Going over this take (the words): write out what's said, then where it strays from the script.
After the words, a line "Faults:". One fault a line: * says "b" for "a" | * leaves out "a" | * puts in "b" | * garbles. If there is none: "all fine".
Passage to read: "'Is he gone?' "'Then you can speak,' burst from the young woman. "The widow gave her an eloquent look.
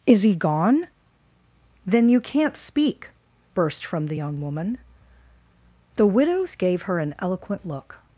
"'Is he gone?' "'Then you can't speak,' burst from the young woman. "The widows gave her an eloquent look.
Faults:
* says "can't" for "can"
* says "widows" for "widow"